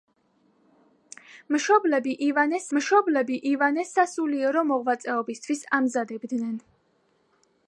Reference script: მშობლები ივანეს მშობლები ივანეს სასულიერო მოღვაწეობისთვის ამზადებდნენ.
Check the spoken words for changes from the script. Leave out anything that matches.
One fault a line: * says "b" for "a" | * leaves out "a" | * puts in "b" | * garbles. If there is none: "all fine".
all fine